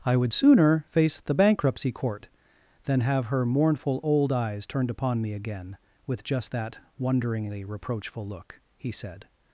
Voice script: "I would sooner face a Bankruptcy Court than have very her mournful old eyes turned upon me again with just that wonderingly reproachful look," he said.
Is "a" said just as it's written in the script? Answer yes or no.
no